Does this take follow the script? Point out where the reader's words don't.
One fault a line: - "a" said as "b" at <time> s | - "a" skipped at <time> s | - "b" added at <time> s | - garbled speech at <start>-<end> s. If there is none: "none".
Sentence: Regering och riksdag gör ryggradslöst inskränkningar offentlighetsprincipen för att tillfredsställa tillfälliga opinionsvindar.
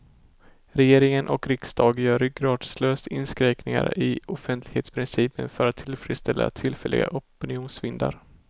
- "i" added at 4.0 s